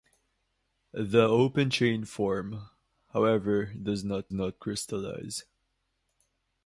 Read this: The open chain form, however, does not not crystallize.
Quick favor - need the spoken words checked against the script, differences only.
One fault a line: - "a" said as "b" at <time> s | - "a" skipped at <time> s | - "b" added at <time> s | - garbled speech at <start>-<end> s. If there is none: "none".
none